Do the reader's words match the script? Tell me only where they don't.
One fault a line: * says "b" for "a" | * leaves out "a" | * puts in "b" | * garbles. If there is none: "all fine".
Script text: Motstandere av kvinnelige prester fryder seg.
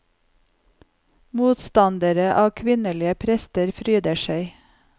all fine